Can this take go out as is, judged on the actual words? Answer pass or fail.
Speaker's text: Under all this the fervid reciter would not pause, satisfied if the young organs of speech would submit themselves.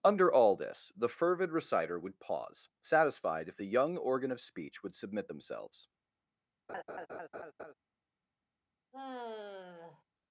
fail